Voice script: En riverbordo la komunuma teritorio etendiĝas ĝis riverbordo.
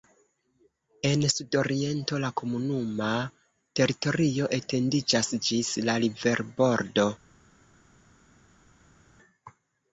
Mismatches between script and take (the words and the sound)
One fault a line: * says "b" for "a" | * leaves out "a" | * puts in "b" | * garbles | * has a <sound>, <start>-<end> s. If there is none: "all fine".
* says "sudoriento" for "riverbordo"
* puts in "la"